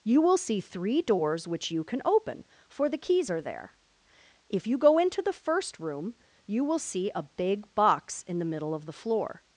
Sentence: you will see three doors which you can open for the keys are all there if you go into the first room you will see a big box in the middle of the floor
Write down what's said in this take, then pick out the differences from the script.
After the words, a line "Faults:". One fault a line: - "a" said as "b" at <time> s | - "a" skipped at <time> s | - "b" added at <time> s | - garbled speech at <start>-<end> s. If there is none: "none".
you will see three doors which you can open for the keys are there if you go into the first room you will see a big box in the middle of the floor
Faults:
- "all" skipped at 3.4 s